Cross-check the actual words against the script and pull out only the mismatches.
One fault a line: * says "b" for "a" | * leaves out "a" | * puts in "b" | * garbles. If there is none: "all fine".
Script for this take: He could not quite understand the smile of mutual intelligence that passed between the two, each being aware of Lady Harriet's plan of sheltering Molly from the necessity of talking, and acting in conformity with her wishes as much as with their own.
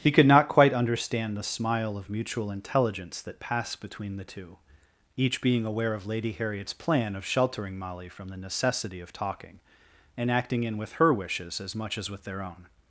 * leaves out "conformity"